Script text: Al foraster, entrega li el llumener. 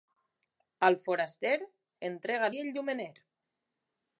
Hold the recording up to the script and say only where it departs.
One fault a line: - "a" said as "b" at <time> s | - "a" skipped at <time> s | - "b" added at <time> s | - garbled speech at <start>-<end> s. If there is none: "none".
none